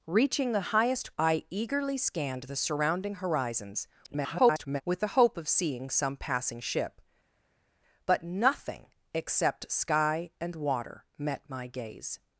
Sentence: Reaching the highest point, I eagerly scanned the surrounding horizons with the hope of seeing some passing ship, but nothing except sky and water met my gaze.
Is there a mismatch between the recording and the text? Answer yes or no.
yes